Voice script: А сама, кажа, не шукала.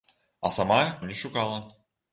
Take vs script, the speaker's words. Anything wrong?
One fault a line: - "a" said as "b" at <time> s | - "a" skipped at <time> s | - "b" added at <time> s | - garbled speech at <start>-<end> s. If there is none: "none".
- "кажа" skipped at 1.0 s